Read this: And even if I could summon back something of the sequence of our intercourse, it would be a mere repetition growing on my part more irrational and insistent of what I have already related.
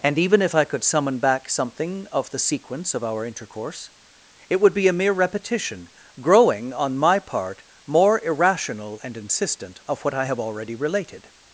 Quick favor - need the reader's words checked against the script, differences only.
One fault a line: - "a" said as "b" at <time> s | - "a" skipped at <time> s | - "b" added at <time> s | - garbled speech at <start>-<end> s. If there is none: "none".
none